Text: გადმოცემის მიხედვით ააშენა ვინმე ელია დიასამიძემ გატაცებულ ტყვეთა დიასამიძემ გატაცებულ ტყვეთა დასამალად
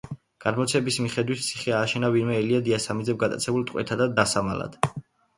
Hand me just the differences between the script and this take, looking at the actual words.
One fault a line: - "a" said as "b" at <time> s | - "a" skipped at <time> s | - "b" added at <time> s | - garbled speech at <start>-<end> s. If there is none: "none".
- "ციხე" added at 1.5 s
- "დიასამიძემ გატაცებულ ტყვეთა" skipped at 4.0 s